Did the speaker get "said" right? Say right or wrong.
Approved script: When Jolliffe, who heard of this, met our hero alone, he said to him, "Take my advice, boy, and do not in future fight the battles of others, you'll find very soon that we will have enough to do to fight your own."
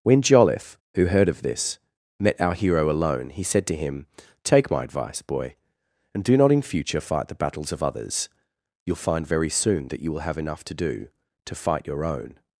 right